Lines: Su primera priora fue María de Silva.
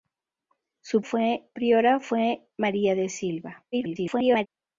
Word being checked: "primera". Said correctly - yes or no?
no